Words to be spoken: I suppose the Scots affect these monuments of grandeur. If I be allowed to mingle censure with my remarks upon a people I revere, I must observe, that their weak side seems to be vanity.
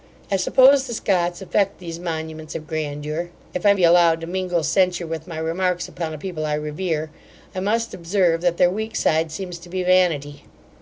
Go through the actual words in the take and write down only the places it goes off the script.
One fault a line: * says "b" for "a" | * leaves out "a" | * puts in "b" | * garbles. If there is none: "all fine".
all fine